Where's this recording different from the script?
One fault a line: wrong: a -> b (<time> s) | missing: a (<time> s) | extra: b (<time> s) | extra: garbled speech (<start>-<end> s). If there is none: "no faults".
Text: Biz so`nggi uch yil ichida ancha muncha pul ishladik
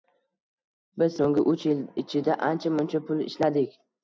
no faults